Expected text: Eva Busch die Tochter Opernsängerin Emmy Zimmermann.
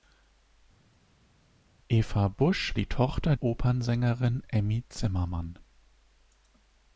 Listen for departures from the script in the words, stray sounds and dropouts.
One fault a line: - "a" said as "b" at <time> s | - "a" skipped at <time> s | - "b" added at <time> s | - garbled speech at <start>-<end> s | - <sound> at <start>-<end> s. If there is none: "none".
none